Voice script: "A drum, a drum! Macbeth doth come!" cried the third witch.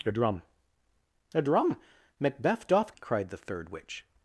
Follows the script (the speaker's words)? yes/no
no